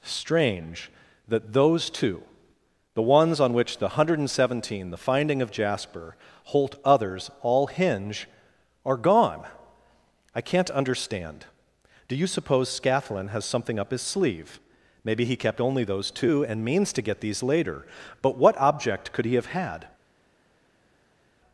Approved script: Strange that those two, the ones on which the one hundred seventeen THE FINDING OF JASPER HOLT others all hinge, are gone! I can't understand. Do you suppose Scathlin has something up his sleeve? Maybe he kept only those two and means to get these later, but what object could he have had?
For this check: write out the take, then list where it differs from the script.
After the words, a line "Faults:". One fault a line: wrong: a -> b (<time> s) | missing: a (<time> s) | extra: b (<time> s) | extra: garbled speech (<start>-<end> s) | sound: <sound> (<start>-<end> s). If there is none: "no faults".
Strange that those two, the ones on which the one hundred seventeen THE FINDING OF JASPER HOLT others all hinge, are gone! I can't understand. Do you suppose Scathlin has something up his sleeve? Maybe he kept only those two and means to get these later, but what object could he have had?
Faults:
no faults